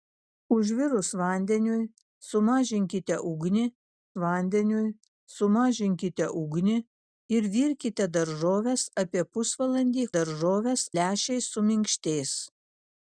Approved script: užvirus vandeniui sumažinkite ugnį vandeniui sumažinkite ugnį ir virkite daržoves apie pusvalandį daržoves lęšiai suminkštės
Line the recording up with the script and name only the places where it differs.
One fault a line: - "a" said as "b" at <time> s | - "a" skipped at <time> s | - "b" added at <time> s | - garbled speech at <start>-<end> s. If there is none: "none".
none